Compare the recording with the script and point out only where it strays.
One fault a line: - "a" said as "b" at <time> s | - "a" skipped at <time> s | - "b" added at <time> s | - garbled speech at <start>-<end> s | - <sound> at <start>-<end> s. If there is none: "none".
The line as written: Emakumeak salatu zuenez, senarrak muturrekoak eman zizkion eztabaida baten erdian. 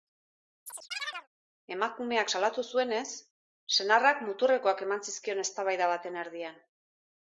- chirp at 0.7-1.3 s